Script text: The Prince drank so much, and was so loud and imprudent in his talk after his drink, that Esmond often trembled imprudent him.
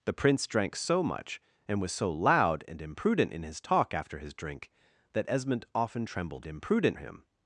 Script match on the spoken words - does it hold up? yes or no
yes